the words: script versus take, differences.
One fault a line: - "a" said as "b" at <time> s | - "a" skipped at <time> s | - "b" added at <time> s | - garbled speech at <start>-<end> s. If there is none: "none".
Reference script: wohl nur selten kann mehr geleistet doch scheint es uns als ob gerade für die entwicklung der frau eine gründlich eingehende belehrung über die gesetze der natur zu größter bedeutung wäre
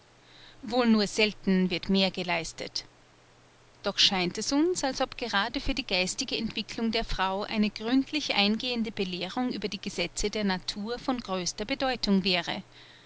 - "kann" said as "wird" at 1.7 s
- "geistige" added at 5.8 s
- "zu" said as "von" at 11.0 s